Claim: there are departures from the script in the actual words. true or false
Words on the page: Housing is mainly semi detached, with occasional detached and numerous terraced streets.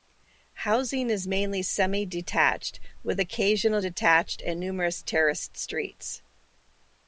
false